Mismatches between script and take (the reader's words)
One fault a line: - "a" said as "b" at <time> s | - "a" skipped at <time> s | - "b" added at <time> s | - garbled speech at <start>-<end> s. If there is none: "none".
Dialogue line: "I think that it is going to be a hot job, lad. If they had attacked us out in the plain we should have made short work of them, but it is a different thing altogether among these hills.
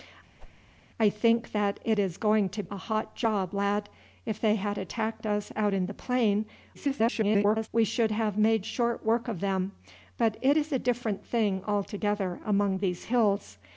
- "be" skipped at 2.6 s
- garbled speech at 6.7-7.7 s